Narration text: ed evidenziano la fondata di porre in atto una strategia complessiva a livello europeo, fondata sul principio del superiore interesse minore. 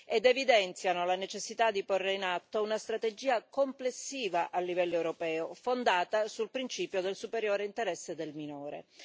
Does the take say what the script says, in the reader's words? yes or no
no